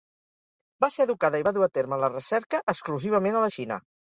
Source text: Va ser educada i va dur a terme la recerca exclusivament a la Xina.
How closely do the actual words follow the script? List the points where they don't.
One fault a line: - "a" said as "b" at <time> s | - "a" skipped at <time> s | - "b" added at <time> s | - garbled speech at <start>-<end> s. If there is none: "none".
none